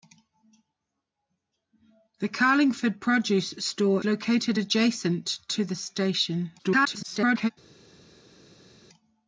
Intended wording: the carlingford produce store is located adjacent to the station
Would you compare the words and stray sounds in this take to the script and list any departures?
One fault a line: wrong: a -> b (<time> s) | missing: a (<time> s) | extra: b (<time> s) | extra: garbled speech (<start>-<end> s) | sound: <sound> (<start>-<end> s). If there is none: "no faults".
missing: is (4.0 s)
extra: garbled speech (6.6-7.5 s)